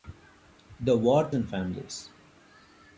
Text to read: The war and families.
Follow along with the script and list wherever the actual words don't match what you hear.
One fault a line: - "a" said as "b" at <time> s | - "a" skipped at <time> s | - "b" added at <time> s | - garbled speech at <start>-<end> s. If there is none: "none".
none